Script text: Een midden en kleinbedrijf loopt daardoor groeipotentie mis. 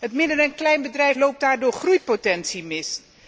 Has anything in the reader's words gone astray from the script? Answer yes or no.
yes